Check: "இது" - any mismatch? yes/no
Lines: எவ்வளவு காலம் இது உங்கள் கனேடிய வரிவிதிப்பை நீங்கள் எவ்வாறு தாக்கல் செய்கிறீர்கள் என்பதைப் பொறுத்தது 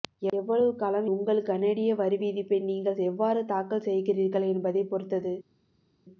yes